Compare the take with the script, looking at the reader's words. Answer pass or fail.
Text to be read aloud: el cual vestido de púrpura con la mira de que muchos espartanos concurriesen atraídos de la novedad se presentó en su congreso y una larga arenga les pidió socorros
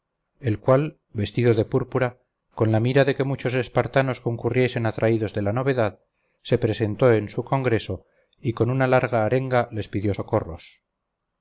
fail